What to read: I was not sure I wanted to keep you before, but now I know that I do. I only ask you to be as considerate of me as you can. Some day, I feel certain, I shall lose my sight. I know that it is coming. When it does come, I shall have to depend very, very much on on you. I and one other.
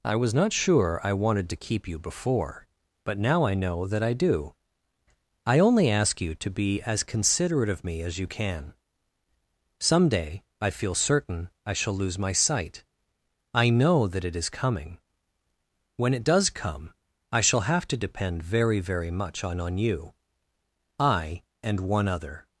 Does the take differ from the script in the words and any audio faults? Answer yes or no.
no